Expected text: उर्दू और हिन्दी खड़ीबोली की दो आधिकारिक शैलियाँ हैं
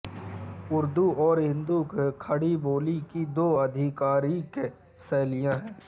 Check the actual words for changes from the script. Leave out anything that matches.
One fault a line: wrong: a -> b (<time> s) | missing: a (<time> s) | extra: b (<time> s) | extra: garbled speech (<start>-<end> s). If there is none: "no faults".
no faults